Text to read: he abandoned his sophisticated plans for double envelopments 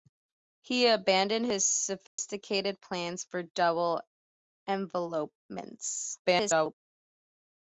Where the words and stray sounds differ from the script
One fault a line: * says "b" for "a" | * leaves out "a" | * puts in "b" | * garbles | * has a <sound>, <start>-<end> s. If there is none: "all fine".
* has a dropout, 2.1-2.2 s
* garbles